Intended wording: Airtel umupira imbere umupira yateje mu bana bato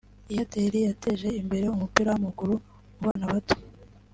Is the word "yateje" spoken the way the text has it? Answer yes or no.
no